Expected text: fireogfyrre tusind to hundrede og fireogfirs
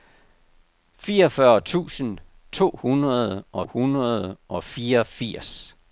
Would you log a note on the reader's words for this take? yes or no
yes